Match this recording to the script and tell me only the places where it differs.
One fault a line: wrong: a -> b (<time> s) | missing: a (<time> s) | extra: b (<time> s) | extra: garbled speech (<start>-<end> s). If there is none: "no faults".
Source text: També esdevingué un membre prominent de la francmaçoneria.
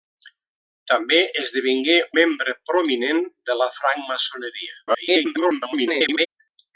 missing: un (2.0 s)
extra: garbled speech (4.9-6.3 s)